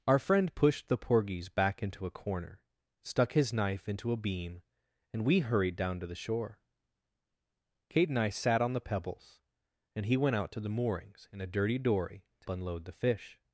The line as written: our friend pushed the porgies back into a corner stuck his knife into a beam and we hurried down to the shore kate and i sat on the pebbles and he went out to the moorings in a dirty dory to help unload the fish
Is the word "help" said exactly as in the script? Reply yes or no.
no